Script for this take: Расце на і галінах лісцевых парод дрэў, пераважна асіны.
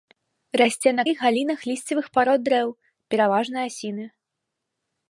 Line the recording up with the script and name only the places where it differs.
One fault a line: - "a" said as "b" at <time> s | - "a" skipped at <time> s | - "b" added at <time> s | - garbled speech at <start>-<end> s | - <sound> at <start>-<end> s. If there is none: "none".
none